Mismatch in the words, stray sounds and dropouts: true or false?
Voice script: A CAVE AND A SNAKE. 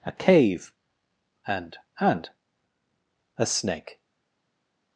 true